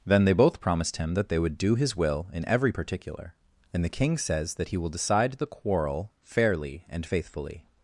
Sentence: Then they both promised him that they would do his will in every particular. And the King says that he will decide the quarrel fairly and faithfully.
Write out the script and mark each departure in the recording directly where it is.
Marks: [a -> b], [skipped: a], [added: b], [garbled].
Then they both promised him that they would do his will in every particular. And the King says that he will decide the quarrel fairly and faithfully.